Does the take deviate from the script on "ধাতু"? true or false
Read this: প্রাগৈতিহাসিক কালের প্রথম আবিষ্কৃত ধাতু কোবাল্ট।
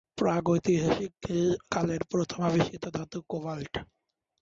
false